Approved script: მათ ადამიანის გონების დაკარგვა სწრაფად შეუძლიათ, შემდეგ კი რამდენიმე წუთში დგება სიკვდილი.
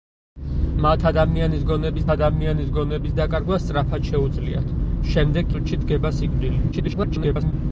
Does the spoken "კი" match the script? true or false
false